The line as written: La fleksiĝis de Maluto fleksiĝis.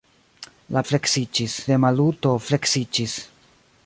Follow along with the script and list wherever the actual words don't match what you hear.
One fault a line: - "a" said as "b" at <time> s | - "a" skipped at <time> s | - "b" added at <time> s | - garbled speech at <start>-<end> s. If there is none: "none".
none